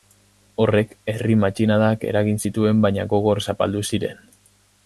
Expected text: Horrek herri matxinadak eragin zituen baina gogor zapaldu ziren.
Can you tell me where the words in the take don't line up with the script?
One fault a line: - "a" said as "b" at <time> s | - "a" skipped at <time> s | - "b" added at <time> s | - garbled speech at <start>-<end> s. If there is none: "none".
none